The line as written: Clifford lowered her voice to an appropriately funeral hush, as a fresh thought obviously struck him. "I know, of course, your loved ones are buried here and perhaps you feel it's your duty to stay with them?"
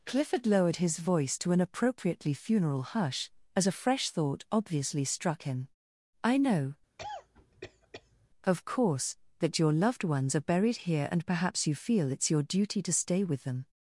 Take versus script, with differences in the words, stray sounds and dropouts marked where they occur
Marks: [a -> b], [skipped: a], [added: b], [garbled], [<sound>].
Clifford lowered [her -> his] voice to an appropriately funeral hush, as a fresh thought obviously struck him. "I know, [cough] of course, [added: that] your loved ones are buried here and perhaps you feel it's your duty to stay with them?"